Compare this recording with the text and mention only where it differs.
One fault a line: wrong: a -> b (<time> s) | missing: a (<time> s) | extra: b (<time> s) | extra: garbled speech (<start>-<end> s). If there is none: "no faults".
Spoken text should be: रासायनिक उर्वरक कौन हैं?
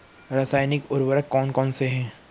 extra: कौनसे (1.5 s)